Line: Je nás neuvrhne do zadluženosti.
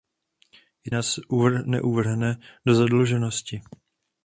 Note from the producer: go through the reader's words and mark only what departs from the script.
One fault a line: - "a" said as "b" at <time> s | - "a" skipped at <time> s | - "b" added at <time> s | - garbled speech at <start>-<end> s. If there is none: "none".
none